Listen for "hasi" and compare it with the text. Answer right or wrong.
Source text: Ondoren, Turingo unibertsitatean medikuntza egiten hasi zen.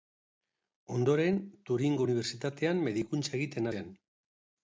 wrong